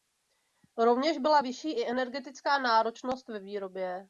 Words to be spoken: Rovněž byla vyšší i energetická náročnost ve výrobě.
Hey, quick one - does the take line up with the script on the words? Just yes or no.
yes